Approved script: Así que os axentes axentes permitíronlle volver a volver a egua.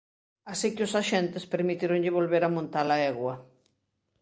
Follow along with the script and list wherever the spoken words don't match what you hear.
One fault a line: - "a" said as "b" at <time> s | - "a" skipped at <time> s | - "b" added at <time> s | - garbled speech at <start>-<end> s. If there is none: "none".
- "axentes" skipped at 1.5 s
- "volver" said as "montar" at 2.6 s